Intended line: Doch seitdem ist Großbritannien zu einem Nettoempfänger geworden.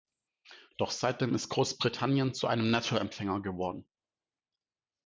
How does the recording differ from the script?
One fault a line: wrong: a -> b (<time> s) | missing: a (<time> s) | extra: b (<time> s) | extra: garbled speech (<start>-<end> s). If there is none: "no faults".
no faults